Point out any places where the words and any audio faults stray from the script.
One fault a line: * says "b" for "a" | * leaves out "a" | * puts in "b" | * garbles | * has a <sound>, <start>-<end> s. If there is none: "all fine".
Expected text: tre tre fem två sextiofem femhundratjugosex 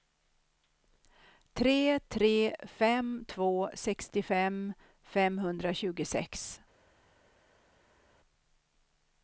all fine